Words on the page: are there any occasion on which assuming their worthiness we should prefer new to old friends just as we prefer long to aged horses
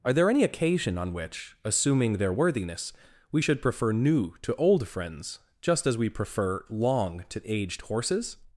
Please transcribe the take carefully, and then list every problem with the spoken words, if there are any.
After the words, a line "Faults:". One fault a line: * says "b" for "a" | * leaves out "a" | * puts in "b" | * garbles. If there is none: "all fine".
are there any occasion on which assuming their worthiness we should prefer new to old friends just as we prefer long to aged horses
Faults:
all fine